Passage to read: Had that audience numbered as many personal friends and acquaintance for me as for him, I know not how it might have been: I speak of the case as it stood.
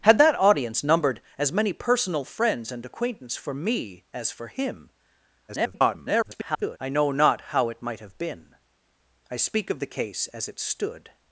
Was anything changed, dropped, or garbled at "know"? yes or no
no